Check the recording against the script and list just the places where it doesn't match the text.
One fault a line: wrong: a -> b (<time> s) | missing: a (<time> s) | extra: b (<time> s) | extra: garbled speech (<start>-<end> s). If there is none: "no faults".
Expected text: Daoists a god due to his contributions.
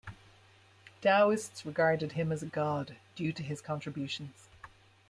extra: regarded him as (1.6 s)